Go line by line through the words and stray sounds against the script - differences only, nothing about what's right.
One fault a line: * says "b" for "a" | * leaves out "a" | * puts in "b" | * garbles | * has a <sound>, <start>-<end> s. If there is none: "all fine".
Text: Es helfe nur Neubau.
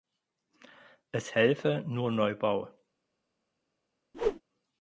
* has a whoosh, 4.1-4.4 s